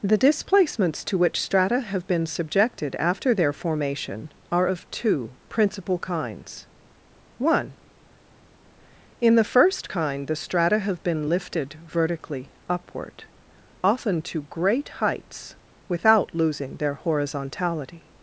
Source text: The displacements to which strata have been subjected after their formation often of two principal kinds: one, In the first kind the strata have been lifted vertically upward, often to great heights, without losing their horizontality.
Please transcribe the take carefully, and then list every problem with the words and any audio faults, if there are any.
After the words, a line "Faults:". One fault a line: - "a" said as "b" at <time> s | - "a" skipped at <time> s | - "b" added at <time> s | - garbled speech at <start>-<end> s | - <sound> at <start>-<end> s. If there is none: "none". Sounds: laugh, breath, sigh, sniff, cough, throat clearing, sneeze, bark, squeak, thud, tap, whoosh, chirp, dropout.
The displacements to which strata have been subjected after their formation are of two principal kinds: one, In the first kind the strata have been lifted vertically upward, often to great heights, without losing their horizontality.
Faults:
- "often" said as "are" at 4.5 s